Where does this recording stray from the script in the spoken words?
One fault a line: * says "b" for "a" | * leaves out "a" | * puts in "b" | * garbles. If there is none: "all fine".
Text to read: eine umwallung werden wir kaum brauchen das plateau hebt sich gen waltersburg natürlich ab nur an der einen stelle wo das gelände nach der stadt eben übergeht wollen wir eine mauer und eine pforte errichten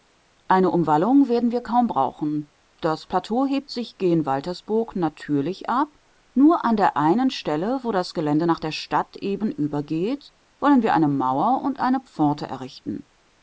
all fine